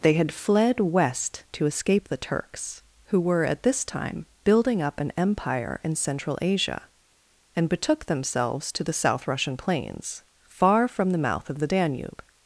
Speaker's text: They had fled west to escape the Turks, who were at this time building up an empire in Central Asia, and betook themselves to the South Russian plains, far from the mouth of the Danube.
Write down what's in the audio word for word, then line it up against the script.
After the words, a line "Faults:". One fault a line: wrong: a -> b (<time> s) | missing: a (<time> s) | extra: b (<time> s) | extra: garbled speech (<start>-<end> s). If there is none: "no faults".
They had fled west to escape the Turks, who were at this time building up an empire in Central Asia, and betook themselves to the South Russian plains, far from the mouth of the Danube.
Faults:
no faults